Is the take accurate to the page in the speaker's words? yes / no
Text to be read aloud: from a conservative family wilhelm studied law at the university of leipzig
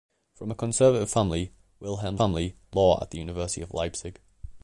no